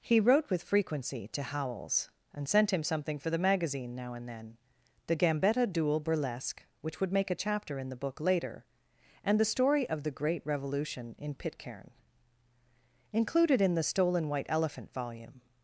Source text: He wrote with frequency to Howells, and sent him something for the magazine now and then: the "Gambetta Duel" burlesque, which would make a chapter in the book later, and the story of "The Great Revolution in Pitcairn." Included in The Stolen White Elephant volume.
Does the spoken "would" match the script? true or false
true